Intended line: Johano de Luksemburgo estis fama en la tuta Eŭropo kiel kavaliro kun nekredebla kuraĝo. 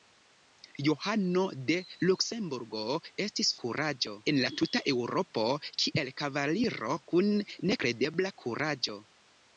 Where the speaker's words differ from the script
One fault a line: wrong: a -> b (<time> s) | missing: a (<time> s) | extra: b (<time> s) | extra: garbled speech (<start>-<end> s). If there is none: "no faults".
wrong: fama -> kuraĝo (3.6 s)